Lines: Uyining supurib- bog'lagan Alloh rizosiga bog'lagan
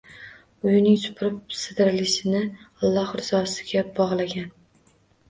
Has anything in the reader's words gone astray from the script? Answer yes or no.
yes